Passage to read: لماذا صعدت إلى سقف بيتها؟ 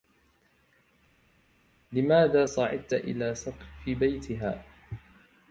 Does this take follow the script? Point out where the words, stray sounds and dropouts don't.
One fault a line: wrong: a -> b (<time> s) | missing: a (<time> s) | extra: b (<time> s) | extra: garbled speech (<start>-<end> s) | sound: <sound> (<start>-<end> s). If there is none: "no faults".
no faults